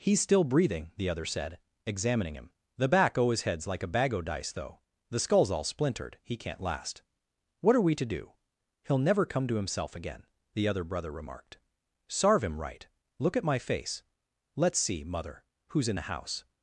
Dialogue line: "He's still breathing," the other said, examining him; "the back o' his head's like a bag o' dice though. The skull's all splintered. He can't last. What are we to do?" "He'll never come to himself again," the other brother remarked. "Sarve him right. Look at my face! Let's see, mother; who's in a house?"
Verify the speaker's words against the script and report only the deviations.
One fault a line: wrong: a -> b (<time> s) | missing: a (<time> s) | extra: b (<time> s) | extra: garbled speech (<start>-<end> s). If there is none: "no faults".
wrong: a -> the (15.9 s)